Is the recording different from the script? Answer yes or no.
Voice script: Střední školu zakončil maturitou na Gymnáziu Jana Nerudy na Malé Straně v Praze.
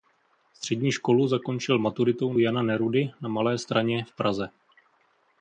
yes